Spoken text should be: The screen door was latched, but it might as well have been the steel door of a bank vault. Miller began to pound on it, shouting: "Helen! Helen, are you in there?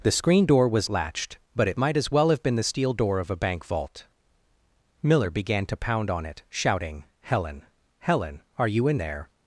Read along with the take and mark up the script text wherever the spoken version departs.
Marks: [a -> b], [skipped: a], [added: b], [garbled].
The screen door was latched, but it might as well have been the steel door of a bank vault. Miller began to pound on it, shouting: "Helen! Helen, are you in there?